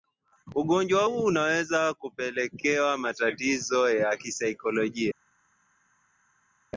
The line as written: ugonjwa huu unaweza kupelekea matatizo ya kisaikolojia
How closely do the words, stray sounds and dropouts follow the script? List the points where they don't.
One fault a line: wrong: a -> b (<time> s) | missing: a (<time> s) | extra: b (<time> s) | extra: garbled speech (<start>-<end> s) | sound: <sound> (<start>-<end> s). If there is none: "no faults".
no faults